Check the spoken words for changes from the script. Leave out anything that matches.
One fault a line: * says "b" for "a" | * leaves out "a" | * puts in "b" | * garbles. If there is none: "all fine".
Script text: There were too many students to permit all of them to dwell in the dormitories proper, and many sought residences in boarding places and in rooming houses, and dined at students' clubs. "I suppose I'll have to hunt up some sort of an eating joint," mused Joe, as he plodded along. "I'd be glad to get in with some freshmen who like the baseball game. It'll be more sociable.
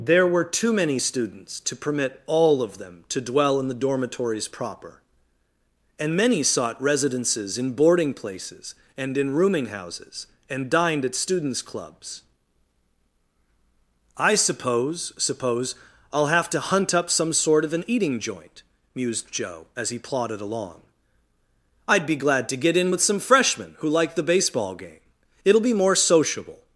* puts in "suppose"